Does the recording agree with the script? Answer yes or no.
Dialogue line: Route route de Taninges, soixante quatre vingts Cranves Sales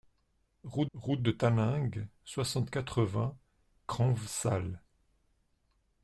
yes